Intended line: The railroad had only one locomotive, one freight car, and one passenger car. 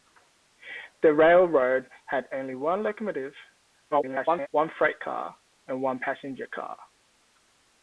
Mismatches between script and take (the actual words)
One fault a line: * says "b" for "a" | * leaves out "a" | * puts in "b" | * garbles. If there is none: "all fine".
* garbles